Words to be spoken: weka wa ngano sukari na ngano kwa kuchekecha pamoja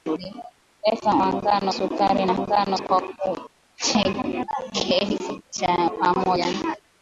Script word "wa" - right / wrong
right